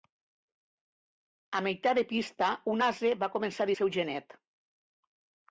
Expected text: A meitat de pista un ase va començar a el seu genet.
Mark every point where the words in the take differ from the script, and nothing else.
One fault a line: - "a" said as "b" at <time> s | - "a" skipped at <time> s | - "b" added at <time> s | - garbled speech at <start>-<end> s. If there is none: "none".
none